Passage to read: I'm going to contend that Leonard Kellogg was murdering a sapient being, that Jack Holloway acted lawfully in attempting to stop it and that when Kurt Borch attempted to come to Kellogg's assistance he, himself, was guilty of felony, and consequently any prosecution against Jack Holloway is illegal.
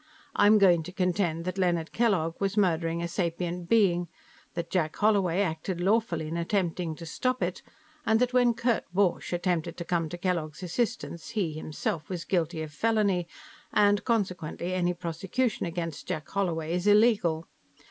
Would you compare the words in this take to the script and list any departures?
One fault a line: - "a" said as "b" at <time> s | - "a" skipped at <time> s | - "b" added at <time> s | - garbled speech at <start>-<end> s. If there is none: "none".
none